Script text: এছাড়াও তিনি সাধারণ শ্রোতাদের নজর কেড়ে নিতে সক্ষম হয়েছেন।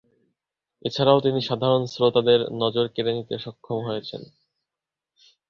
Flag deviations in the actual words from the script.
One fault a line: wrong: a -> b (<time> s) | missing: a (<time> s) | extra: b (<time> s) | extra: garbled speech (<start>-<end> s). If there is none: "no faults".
no faults